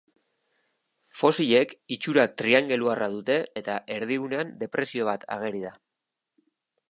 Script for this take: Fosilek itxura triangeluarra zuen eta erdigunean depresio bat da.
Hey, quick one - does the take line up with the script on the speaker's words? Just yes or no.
no